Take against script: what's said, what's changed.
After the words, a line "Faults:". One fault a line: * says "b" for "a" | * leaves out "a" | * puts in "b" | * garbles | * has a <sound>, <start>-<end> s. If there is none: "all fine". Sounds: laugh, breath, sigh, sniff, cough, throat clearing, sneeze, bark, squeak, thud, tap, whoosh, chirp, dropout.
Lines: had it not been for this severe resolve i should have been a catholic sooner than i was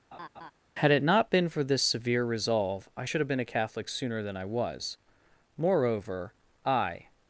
had it not been for this severe resolve i should have been a catholic sooner than i was moreover i
Faults:
* has a laugh, 0.1-0.5 s
* puts in "moreover i"